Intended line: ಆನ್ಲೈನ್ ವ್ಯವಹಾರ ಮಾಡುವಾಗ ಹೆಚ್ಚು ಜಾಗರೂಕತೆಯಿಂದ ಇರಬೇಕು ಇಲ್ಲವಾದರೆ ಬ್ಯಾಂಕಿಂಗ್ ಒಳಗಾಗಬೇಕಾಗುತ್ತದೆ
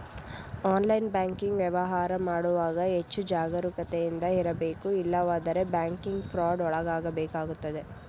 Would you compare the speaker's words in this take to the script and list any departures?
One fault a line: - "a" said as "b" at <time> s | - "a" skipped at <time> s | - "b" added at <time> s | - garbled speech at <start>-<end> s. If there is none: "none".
- "ಬ್ಯಾಂಕಿಂಗ್" added at 1.1 s
- "ಫ್ರಾಡ್" added at 6.3 s